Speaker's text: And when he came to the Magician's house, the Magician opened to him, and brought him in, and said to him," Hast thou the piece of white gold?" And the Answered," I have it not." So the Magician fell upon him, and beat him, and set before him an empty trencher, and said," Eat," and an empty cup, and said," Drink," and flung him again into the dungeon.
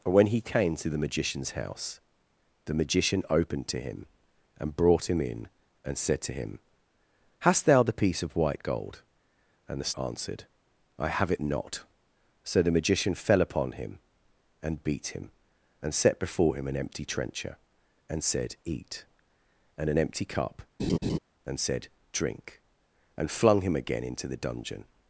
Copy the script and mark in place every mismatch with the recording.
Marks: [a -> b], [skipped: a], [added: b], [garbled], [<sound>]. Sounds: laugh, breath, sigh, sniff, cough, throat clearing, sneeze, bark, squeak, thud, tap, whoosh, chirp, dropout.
And when he came to the Magician's house, the Magician opened to him, and brought him in, and said to him," Hast thou the piece of white gold?" And the Answered," I have it not." So the Magician fell upon him, and beat him, and set before him an empty trencher, and said," Eat," and an empty cup, [laugh] and said," Drink," and flung him again into the dungeon.